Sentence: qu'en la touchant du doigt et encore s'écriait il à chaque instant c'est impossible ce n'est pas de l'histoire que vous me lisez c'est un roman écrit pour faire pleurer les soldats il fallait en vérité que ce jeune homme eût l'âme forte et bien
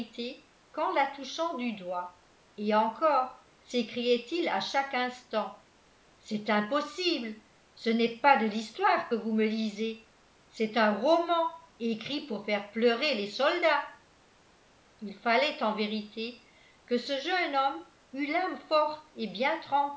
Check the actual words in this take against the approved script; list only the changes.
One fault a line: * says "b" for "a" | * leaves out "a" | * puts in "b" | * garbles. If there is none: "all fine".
all fine